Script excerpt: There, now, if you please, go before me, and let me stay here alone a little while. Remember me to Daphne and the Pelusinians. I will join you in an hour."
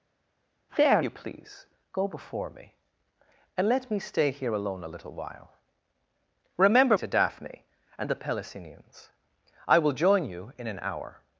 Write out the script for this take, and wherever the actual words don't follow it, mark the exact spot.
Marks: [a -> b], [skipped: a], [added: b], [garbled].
There, [skipped: now, if] you please, go before me, and let me stay here alone a little while. Remember [skipped: me] to Daphne and the Pelusinians. I will join you in an hour."